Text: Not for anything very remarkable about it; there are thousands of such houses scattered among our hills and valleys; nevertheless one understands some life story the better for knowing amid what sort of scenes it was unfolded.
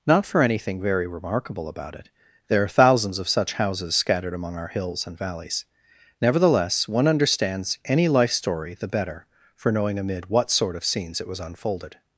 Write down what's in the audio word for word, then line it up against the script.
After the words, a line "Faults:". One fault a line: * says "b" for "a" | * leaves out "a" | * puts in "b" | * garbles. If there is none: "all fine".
Not for anything very remarkable about it; there are thousands of such houses scattered among our hills and valleys; nevertheless one understands any life story the better for knowing amid what sort of scenes it was unfolded.
Faults:
* says "any" for "some"